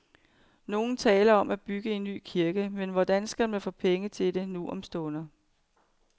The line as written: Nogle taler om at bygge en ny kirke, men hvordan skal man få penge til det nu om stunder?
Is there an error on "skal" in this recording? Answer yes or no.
no